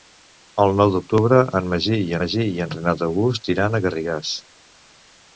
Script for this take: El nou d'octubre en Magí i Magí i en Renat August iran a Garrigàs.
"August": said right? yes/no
yes